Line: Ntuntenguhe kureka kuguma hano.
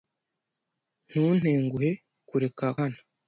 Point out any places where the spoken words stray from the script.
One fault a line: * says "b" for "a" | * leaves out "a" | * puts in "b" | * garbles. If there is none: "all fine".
* leaves out "kuguma"